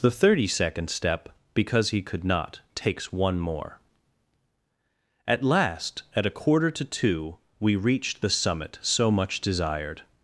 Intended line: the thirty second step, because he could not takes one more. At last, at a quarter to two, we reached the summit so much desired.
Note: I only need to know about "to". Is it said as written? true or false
true